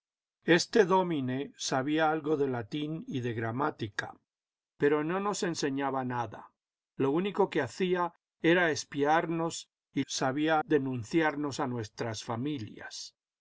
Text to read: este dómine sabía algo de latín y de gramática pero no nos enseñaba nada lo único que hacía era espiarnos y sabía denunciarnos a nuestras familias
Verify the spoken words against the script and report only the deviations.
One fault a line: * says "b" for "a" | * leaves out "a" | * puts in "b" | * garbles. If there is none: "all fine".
all fine